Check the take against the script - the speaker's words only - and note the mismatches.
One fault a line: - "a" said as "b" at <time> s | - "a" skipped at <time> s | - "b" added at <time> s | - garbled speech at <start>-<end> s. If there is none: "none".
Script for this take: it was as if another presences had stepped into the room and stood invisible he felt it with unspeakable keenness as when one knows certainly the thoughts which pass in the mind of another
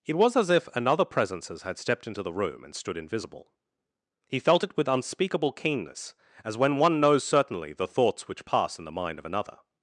none